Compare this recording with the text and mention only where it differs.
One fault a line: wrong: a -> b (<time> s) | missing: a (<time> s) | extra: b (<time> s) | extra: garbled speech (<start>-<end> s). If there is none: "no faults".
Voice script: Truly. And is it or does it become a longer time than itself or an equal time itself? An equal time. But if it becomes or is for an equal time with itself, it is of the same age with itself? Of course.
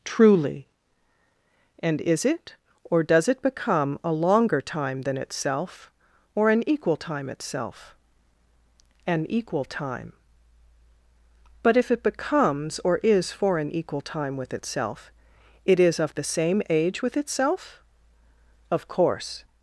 no faults